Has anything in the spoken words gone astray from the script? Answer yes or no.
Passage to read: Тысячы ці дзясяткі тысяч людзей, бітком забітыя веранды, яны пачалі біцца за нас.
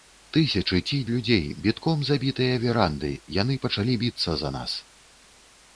yes